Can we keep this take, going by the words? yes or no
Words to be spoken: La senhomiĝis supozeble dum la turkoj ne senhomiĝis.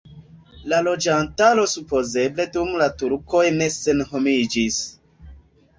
no